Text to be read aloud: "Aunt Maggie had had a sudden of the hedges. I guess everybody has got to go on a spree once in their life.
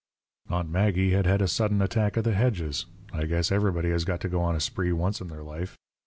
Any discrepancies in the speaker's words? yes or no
yes